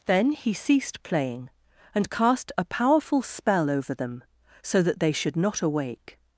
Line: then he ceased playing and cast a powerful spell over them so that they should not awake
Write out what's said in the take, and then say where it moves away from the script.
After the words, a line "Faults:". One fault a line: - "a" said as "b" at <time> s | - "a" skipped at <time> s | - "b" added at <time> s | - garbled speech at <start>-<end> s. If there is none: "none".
then he ceased playing and cast a powerful spell over them so that they should not awake
Faults:
none